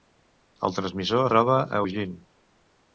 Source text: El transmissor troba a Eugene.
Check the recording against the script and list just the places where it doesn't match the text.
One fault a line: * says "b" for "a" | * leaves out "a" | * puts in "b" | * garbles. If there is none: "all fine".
all fine